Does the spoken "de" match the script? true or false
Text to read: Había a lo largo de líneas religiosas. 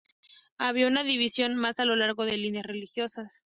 true